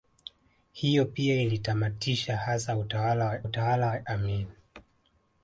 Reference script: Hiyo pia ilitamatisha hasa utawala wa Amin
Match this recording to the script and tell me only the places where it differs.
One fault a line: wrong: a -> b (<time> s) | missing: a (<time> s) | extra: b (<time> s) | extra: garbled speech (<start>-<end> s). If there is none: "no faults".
extra: utawala wa (3.4 s)